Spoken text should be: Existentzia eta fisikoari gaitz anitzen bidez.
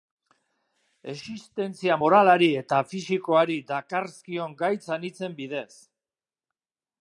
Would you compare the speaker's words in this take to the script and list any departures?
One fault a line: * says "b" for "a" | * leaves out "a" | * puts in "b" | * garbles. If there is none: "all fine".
* puts in "moralari"
* puts in "dakarzkion"